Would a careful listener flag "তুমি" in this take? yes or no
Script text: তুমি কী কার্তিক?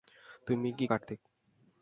no